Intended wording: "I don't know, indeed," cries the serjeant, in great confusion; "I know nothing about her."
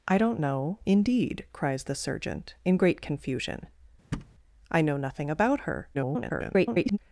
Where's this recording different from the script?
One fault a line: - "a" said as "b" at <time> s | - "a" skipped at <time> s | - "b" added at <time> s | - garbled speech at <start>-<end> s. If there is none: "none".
- garbled speech at 5.9-7.0 s